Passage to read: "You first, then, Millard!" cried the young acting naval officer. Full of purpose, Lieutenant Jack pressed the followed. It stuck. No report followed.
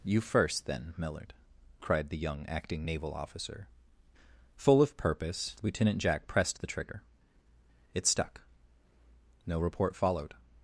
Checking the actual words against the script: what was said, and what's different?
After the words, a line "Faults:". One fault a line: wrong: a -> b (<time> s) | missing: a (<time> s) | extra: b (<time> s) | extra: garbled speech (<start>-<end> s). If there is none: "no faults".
"You first, then, Millard!" cried the young acting naval officer. Full of purpose, Lieutenant Jack pressed the trigger. It stuck. No report followed.
Faults:
wrong: followed -> trigger (6.7 s)